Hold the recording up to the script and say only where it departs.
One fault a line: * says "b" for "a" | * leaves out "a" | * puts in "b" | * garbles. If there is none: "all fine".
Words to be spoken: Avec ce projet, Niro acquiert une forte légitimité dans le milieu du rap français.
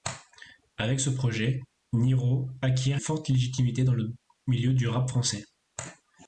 * leaves out "une"